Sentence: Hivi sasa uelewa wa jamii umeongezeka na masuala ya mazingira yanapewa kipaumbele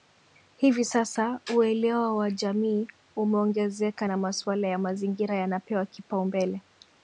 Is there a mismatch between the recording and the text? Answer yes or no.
no